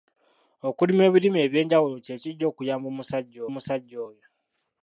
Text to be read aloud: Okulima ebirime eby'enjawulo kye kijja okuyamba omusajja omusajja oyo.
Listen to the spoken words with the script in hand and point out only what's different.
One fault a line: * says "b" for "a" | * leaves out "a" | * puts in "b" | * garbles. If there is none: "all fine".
all fine